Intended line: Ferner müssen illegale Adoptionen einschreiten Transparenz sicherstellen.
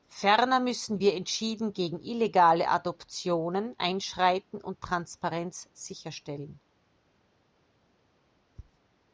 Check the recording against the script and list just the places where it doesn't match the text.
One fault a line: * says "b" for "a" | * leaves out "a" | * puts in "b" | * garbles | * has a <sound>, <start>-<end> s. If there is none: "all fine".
* puts in "wir entschieden gegen"
* puts in "und"